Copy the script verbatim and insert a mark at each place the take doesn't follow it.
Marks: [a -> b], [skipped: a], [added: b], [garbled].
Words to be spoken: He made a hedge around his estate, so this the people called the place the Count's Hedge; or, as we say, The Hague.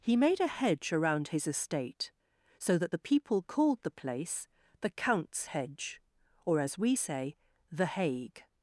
He made a hedge around his estate, so [this -> that] the people called the place the Count's Hedge; or, as we say, The Hague.